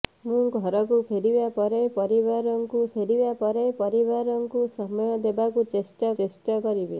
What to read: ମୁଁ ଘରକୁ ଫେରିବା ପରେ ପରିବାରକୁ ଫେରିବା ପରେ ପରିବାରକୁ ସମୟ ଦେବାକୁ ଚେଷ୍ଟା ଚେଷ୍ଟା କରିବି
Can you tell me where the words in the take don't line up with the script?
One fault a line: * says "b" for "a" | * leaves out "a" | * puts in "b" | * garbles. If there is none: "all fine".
all fine